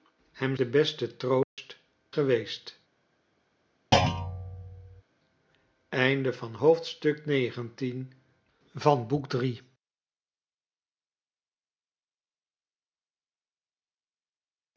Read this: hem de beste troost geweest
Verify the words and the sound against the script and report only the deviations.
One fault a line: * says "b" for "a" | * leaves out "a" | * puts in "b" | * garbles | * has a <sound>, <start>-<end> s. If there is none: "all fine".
* has a dropout, 1.4-1.6 s
* has a thud, 3.9-5.0 s